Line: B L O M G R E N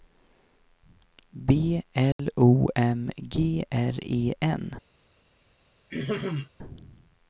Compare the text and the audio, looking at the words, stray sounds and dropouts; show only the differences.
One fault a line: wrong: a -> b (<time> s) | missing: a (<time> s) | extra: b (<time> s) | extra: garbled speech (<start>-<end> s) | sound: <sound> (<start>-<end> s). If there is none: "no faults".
sound: dropout (2.1-2.2 s)
sound: throat clearing (5.9-6.5 s)